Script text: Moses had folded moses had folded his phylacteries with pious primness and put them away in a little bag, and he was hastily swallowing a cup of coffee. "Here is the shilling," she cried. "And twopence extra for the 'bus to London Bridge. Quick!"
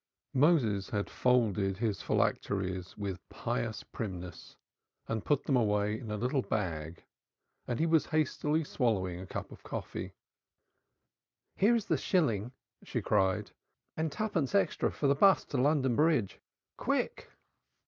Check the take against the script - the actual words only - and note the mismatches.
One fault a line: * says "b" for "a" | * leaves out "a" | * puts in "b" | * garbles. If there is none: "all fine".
* leaves out "moses had folded"